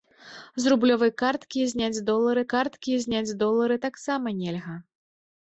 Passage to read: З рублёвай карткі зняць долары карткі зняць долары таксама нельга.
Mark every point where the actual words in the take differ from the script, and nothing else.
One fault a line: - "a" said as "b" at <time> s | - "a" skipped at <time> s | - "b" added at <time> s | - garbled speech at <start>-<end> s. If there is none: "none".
none